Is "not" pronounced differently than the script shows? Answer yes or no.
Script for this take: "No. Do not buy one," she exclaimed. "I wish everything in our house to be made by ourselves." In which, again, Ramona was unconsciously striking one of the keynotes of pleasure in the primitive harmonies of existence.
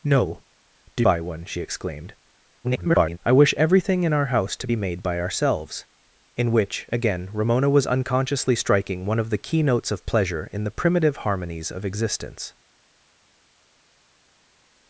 yes